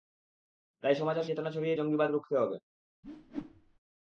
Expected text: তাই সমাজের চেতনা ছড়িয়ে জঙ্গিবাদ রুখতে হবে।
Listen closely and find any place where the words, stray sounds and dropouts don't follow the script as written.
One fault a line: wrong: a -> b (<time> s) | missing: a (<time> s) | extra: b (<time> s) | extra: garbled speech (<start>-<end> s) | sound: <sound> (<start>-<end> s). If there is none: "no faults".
sound: whoosh (3.0-3.8 s)